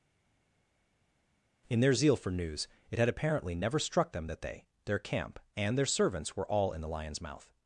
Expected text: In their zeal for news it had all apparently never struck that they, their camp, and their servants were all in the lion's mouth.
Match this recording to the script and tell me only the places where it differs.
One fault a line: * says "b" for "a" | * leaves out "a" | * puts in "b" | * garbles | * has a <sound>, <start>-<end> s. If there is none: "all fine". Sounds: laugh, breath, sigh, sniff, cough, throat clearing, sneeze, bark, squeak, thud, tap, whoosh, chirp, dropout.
* leaves out "all"
* puts in "them"